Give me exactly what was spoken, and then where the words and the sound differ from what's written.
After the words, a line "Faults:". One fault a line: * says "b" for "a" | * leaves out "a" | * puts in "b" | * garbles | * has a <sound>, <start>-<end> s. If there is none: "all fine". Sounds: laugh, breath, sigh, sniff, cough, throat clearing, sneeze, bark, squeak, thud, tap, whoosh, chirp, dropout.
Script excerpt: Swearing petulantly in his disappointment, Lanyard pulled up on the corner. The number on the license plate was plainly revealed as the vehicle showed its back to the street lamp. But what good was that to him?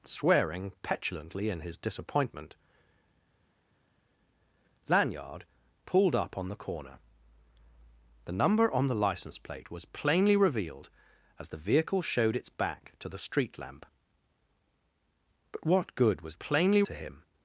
Swearing petulantly in his disappointment, Lanyard pulled up on the corner. The number on the license plate was plainly revealed as the vehicle showed its back to the street lamp. But what good was plainly to him?
Faults:
* says "plainly" for "that"